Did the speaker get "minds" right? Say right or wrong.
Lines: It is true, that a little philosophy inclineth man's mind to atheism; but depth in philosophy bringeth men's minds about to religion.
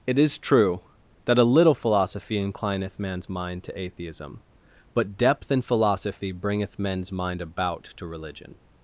wrong